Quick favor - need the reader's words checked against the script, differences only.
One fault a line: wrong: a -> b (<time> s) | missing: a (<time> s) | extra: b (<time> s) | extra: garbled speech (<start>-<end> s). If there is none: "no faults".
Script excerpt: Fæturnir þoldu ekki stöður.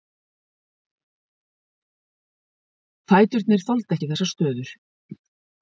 extra: þessar (4.1 s)